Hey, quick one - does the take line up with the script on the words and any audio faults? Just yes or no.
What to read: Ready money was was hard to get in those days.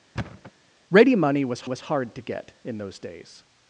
no